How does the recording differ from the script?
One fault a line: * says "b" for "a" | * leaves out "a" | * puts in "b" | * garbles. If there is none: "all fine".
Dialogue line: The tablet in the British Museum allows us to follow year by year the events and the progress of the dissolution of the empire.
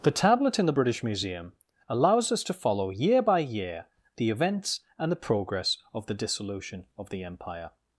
all fine